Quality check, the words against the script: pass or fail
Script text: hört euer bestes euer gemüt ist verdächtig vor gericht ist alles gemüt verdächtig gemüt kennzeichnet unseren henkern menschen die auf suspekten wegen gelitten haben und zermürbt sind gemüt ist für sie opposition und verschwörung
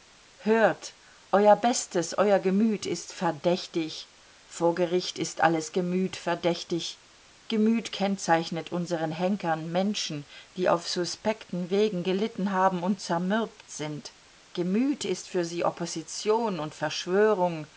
pass